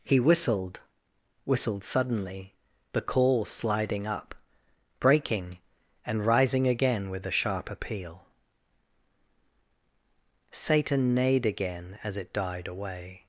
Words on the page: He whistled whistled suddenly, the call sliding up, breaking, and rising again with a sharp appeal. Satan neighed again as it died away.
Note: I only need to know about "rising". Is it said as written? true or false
true